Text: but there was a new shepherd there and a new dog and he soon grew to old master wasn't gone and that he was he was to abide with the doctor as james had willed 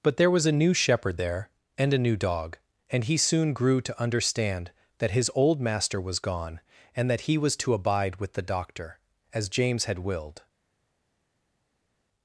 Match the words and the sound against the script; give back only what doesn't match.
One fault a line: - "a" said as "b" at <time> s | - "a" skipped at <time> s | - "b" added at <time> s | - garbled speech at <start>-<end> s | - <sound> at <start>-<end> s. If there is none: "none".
- "understand that his" added at 4.0 s
- "wasn't" said as "was" at 6.0 s
- "he was" skipped at 7.6 s